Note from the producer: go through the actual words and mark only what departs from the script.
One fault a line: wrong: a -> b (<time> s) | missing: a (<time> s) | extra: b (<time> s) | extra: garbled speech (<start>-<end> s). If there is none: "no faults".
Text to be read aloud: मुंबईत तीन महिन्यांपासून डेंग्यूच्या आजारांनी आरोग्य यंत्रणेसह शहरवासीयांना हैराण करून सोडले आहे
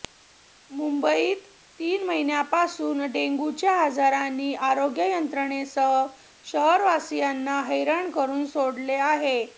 no faults